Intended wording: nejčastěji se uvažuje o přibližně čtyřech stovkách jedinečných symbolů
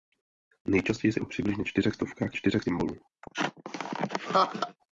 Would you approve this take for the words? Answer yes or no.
no